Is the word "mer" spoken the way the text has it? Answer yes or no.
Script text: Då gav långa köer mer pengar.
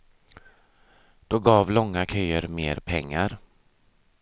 yes